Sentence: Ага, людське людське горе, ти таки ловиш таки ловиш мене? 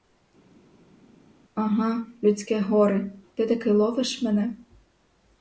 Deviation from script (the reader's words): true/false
true